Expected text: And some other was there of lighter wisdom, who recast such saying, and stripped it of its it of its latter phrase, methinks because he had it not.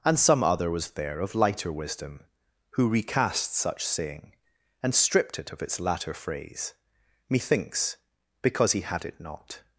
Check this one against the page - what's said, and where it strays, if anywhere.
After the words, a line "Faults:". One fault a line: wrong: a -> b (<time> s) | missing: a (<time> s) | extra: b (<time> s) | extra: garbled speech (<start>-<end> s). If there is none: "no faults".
And some other was there of lighter wisdom, who recast such saying, and stripped it of its latter phrase, methinks because he had it not.
Faults:
missing: it of its (5.8 s)